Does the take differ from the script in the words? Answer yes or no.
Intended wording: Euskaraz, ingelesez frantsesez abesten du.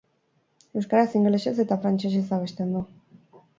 yes